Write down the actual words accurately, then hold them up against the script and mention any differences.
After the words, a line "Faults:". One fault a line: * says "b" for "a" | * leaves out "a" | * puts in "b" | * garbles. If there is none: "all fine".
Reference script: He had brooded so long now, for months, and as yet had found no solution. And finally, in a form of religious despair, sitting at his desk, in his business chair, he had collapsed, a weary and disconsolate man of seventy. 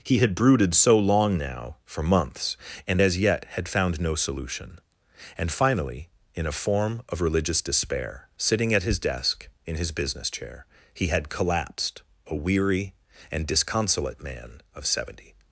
He had brooded so long now, for months, and as yet had found no solution. And finally, in a form of religious despair, sitting at his desk, in his business chair, he had collapsed, a weary and disconsolate man of seventy.
Faults:
all fine